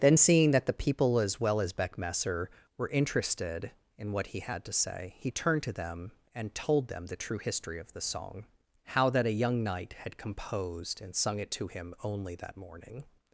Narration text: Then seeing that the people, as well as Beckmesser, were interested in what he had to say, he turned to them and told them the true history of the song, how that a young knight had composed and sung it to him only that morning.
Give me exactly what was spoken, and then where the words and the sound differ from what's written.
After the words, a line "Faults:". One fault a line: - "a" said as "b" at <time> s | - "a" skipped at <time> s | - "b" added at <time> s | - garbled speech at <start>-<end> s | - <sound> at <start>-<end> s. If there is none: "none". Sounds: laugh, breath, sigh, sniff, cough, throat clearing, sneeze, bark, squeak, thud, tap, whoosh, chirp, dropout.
Then seeing that the people, as well as Beckmesser, were interested in what he had to say, he turned to them and told them the true history of the song, how that a young knight had composed and sung it to him only that morning.
Faults:
none